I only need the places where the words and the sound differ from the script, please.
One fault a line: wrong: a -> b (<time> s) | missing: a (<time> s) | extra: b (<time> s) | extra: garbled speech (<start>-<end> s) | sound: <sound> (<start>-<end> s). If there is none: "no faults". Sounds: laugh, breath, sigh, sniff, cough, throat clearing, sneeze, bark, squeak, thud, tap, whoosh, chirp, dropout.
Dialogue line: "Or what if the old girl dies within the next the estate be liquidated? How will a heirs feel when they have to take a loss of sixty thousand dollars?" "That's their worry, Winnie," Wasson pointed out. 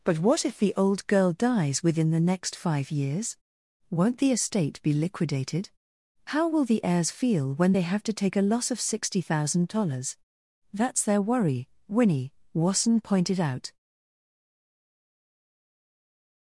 wrong: Or -> But (0.0 s)
extra: five years Won't (2.5 s)
wrong: a -> the (6.7 s)